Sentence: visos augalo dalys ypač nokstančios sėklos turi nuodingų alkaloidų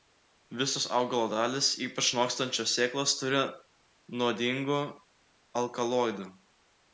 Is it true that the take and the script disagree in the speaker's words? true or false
false